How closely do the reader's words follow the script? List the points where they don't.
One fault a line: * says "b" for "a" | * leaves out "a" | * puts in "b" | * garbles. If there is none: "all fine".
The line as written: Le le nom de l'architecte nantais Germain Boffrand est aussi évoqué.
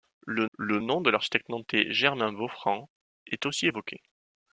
all fine